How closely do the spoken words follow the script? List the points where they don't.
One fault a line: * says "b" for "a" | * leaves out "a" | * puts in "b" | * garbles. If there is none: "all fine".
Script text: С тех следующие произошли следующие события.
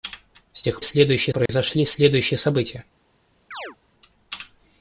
all fine